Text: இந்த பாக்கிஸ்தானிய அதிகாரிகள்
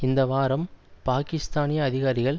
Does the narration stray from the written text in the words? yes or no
yes